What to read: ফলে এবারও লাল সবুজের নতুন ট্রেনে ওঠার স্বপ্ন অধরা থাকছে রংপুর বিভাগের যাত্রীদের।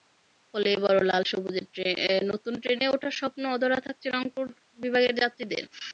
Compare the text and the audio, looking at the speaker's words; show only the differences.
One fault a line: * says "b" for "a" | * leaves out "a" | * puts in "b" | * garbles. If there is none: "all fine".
all fine